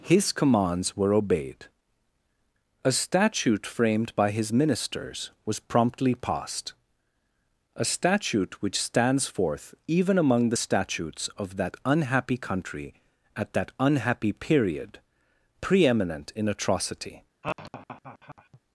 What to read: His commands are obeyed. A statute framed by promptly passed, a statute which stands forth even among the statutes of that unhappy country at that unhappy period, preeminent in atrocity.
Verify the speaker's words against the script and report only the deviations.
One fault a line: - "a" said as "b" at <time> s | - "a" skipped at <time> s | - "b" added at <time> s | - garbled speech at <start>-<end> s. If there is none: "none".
- "are" said as "were" at 1.0 s
- "his ministers was" added at 4.3 s